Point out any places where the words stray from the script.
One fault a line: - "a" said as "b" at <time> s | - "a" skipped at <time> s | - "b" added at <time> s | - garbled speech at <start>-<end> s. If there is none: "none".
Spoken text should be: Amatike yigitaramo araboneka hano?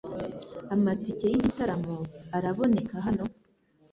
none